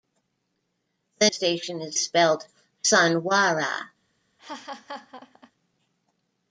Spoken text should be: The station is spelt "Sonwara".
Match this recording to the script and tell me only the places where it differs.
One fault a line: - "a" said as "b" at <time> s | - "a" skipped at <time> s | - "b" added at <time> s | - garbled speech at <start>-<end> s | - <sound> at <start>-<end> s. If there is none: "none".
- laugh at 4.4-5.5 s